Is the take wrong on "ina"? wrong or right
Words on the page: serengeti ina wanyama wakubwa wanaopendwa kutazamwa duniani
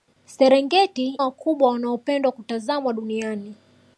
wrong